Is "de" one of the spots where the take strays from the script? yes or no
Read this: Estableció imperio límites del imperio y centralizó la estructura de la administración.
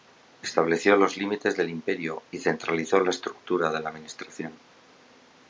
no